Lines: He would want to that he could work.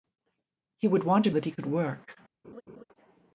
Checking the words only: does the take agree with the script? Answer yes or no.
yes